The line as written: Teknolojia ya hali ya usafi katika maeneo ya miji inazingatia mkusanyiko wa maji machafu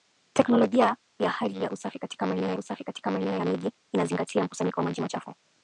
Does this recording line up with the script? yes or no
no